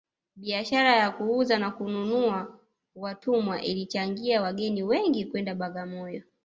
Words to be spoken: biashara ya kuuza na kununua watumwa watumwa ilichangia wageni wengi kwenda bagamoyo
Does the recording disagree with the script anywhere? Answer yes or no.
yes